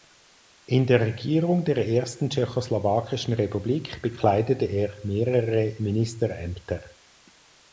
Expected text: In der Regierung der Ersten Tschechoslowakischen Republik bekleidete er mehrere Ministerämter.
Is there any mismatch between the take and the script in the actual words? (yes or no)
no